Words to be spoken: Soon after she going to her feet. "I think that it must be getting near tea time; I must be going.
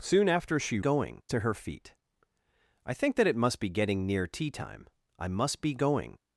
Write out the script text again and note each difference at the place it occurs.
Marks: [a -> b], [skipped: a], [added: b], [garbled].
Soon after she going to her feet. "I think that it must be getting near tea time; I must be going.